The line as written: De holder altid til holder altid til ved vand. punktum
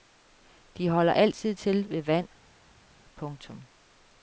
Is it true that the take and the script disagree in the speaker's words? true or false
true